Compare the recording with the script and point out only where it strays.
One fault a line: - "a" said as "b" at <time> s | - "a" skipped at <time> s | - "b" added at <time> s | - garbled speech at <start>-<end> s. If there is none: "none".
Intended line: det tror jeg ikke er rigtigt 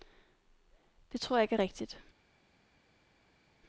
none